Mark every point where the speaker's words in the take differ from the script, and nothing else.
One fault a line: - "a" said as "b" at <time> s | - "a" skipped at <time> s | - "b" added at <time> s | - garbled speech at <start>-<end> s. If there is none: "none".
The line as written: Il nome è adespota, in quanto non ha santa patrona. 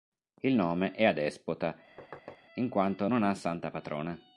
none